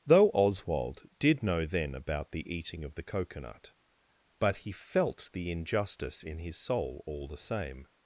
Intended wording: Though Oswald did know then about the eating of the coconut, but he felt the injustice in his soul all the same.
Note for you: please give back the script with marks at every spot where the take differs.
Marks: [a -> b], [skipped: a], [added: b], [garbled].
Though Oswald did know then about the eating of the coconut, but he felt the injustice in his soul all the same.